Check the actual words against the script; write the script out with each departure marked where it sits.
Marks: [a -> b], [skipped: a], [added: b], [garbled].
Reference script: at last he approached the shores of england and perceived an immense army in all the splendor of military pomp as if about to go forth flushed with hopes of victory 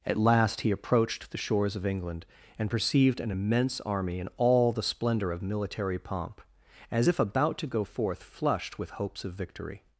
at last he approached the shores of england and perceived an immense army in all the splendor of military pomp as if about to go forth flushed with hopes of victory